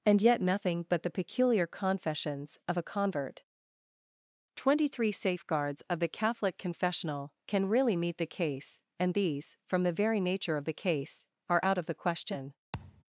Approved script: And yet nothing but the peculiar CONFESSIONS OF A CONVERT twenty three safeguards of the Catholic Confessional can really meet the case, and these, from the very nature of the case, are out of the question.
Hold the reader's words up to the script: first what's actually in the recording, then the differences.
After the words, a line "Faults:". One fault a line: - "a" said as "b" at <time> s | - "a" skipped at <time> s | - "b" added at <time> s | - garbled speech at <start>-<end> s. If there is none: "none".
And yet nothing but the peculiar CONFESSIONS OF A CONVERT twenty three safeguards of the Catholic Confessional can really meet the case, and these, from the very nature of the case, are out of the question.
Faults:
none